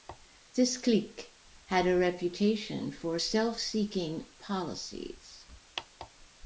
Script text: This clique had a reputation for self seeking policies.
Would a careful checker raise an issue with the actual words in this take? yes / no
no